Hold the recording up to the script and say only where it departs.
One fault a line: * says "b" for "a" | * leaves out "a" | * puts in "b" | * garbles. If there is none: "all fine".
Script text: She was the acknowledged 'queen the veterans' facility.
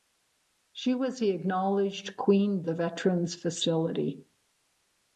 all fine